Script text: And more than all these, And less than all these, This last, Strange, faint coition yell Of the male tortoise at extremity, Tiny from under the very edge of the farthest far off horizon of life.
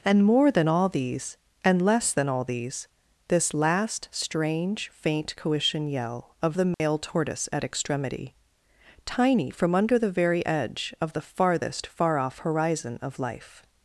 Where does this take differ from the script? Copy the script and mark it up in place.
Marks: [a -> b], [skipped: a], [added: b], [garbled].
And more than all these, And less than all these, This last, Strange, faint coition yell Of the male tortoise at extremity, Tiny from under the very edge of the farthest far off horizon of life.